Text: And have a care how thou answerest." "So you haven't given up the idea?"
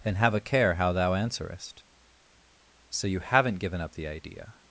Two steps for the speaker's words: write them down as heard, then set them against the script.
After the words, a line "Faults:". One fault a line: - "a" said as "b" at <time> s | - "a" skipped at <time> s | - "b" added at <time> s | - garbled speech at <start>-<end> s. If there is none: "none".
And have a care how thou answerest." "So you haven't given up the idea?"
Faults:
none